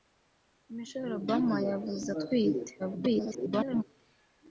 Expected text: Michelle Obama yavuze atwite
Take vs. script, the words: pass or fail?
fail